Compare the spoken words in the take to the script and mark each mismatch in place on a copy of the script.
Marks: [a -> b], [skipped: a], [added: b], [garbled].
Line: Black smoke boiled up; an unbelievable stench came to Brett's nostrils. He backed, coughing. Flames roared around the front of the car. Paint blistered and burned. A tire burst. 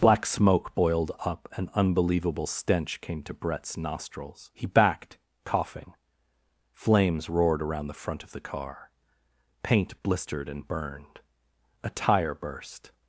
Black smoke boiled up; an unbelievable stench came to Brett's nostrils. He backed, coughing. Flames roared around the front of the car. Paint blistered and burned. A tire burst.